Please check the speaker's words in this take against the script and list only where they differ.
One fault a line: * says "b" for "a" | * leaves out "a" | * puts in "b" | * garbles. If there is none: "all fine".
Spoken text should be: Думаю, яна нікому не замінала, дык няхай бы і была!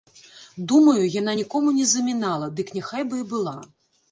all fine